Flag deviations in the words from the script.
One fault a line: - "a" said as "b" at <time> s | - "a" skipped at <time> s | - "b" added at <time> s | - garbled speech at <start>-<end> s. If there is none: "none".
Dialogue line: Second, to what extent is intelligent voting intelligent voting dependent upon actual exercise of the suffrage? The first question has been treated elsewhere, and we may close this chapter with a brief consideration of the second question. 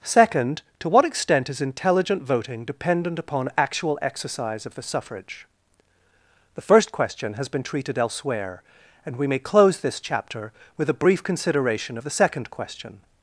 - "intelligent voting" skipped at 2.6 s